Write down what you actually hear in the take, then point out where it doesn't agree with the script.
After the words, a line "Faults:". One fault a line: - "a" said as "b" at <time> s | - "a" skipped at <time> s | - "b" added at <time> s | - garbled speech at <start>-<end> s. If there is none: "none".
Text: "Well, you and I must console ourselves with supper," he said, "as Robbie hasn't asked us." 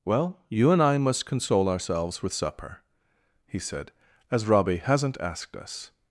"Well, you and I must console ourselves with supper," he said, "as Robbie hasn't asked us."
Faults:
none